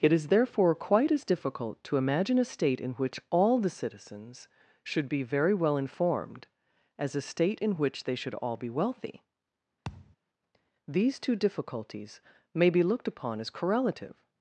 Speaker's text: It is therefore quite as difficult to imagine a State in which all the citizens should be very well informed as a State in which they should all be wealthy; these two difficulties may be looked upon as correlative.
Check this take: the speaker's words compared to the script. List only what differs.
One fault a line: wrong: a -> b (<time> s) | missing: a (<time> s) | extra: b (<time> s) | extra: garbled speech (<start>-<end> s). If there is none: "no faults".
no faults